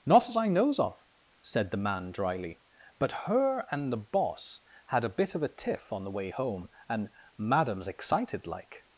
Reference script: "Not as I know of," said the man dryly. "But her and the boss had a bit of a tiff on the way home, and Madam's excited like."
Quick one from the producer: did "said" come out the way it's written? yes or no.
yes